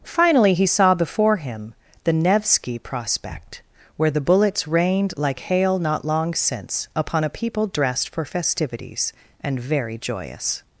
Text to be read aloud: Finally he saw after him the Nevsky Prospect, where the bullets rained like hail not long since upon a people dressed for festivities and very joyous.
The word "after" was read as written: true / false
false